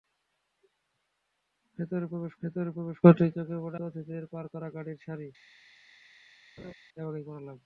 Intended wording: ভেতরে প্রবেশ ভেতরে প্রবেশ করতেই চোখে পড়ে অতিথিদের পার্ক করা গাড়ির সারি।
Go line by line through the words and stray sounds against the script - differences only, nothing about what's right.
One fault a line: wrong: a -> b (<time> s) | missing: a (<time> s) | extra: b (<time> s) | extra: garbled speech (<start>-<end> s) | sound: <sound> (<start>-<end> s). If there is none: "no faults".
sound: laugh (6.6-6.7 s)